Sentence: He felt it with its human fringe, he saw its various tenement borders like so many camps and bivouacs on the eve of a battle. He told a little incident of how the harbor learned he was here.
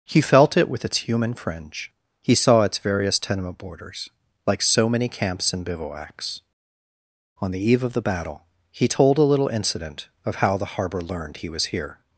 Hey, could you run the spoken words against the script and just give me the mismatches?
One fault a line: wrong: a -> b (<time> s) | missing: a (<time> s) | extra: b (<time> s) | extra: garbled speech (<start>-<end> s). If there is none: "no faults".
wrong: a -> the (7.9 s)